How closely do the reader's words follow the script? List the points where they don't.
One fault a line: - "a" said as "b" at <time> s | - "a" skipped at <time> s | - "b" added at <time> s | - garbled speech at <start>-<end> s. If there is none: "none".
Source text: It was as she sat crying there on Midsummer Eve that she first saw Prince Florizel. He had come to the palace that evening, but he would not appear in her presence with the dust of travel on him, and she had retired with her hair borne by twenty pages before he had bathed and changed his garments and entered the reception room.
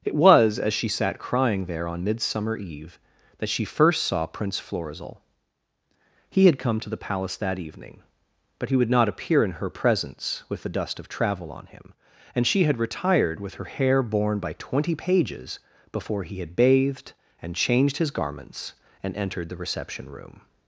none